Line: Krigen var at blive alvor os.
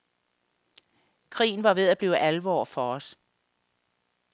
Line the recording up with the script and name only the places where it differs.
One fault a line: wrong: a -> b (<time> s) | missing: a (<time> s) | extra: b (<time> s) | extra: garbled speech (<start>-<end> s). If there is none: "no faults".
extra: ved (1.7 s)
extra: for (2.7 s)